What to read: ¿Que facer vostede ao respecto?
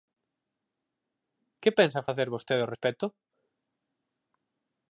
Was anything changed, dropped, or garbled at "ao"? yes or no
no